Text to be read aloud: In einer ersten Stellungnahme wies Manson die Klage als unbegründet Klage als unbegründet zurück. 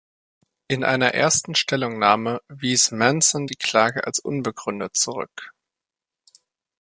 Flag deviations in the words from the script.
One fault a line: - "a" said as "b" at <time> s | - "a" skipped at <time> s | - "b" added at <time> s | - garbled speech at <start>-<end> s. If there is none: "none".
- "Klage als unbegründet" skipped at 5.0 s